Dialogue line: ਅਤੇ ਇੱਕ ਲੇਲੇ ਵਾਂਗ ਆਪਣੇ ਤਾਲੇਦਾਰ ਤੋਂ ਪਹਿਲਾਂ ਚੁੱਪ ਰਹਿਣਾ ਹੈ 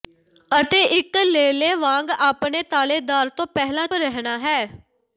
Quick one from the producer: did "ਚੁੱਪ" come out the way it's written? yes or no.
no